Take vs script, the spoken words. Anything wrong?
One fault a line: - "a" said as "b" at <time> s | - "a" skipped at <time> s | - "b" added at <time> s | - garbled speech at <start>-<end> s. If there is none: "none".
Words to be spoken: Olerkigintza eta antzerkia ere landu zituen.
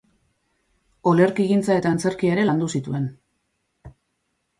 none